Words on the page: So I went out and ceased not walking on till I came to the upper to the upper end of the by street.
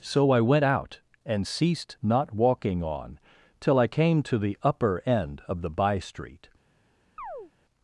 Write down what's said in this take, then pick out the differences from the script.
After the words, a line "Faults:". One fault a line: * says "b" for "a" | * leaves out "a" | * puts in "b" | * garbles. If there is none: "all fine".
So I went out and ceased not walking on till I came to the upper end of the by street.
Faults:
* leaves out "to the upper"